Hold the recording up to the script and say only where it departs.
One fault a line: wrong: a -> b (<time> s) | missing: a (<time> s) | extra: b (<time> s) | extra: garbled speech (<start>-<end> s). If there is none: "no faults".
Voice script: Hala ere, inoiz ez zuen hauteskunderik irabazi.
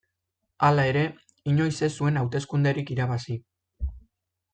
no faults